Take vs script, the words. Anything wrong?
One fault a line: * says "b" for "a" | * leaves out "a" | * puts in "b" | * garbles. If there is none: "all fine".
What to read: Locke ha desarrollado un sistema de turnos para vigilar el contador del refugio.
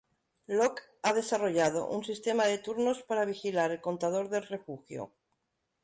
all fine